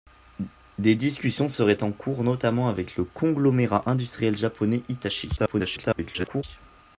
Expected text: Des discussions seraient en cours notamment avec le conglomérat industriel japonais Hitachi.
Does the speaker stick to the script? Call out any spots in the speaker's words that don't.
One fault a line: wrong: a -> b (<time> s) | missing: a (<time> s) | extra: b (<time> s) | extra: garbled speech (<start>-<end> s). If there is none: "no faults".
extra: garbled speech (5.4-6.4 s)